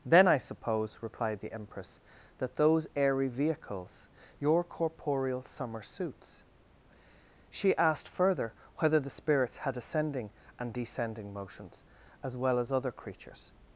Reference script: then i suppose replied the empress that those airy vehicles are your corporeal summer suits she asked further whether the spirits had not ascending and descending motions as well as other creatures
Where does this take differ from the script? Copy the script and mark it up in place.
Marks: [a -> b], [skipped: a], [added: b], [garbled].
then i suppose replied the empress that those airy vehicles [skipped: are] your corporeal summer suits she asked further whether the spirits had [skipped: not] ascending and descending motions as well as other creatures